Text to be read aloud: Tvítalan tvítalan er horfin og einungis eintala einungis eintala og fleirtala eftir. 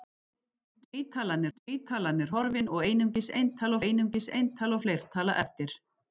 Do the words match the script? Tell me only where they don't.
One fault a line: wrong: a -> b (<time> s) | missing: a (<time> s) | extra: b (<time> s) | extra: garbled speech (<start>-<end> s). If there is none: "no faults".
no faults